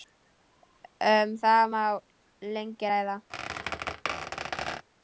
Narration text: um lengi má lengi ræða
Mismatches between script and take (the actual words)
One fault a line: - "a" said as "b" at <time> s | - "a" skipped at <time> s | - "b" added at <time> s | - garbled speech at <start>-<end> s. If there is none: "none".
- "lengi" said as "það" at 1.4 s